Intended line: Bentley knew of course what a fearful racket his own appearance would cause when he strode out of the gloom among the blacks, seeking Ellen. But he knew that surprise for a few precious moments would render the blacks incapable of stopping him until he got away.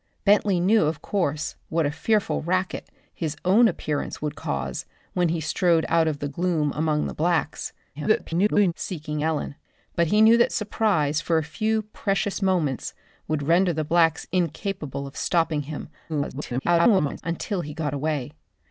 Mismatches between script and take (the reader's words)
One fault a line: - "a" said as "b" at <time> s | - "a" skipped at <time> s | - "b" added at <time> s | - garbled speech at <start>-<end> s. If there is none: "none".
- garbled speech at 7.9-8.7 s
- garbled speech at 16.1-17.2 s